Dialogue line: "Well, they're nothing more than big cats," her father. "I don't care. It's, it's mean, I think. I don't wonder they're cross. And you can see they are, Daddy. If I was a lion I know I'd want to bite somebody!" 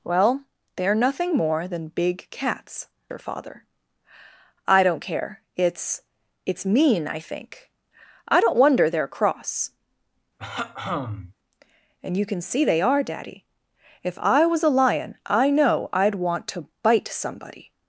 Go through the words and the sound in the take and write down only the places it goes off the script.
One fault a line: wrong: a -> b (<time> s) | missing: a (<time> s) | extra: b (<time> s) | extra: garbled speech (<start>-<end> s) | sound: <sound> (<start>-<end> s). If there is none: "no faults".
sound: throat clearing (10.4-11.3 s)